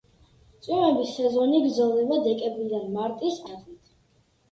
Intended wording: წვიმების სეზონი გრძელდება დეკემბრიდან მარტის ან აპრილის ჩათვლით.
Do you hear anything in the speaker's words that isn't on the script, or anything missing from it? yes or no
yes